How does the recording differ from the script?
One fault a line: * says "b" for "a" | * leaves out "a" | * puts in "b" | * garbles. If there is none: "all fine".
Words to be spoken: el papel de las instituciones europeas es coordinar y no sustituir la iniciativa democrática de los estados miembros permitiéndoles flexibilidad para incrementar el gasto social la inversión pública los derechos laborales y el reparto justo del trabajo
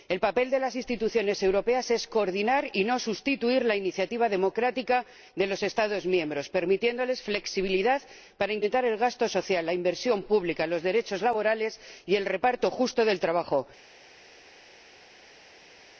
all fine